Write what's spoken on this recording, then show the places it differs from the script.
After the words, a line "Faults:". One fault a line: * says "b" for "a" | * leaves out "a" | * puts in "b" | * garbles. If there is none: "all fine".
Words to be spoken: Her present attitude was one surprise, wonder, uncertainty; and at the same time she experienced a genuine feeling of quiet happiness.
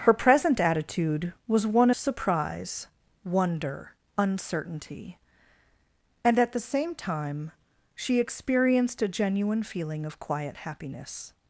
Her present attitude was one surprise, wonder, uncertainty; and at the same time she experienced a genuine feeling of quiet happiness.
Faults:
all fine